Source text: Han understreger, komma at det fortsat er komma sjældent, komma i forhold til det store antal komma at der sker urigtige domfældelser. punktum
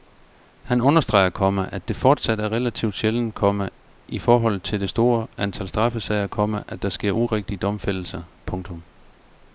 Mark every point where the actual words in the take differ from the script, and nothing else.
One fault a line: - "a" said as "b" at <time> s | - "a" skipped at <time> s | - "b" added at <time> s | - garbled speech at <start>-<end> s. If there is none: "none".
- "komma" said as "relativt" at 2.5 s
- "straffesager" added at 5.7 s